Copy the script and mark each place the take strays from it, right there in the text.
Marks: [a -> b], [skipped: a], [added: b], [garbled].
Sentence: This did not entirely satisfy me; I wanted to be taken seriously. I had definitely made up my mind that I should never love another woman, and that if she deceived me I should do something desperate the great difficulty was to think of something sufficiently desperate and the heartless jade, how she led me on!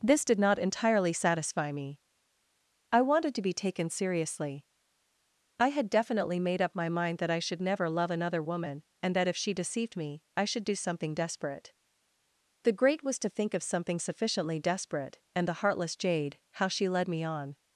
This did not entirely satisfy me; I wanted to be taken seriously. I had definitely made up my mind that I should never love another woman, and that if she deceived me I should do something desperate the great [skipped: difficulty] was to think of something sufficiently desperate and the heartless jade, how she led me on!